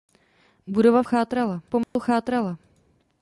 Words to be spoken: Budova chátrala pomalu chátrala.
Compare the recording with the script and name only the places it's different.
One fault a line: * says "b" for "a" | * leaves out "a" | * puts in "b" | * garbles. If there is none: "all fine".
all fine